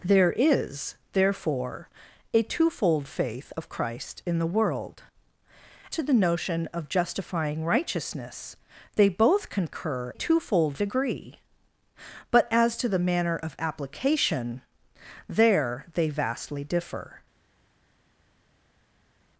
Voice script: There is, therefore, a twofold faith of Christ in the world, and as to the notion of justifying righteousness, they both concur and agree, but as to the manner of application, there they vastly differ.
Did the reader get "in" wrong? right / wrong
right